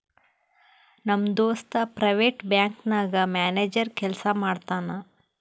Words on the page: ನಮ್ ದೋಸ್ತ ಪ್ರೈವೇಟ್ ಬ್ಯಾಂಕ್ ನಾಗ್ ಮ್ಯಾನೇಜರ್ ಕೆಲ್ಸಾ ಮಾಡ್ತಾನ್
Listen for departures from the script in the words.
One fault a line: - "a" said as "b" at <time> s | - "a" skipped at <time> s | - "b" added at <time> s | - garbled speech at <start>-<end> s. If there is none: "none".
none